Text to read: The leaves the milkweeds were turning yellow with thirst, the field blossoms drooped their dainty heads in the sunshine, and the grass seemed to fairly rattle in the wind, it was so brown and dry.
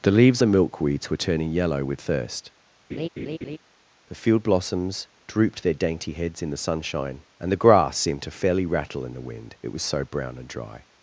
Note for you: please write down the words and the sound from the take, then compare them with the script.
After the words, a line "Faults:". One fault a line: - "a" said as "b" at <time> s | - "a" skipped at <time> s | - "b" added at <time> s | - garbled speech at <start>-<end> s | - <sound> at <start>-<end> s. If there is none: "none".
The leaves the milkweeds were turning yellow with thirst, the field blossoms drooped their dainty heads in the sunshine, and the grass seemed to fairly rattle in the wind, it was so brown and dry.
Faults:
- laugh at 2.9-3.6 s